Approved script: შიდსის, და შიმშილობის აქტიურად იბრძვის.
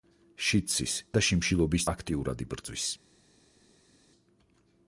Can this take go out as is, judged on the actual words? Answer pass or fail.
pass